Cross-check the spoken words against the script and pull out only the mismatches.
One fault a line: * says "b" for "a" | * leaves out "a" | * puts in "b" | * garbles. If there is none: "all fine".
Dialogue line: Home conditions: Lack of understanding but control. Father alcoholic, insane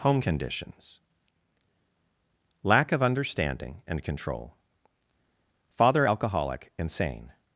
* says "and" for "but"